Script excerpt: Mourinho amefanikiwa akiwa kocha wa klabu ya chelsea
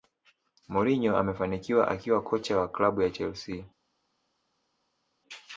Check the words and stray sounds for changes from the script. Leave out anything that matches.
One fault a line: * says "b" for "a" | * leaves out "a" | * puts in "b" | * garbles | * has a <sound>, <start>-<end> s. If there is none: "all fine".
all fine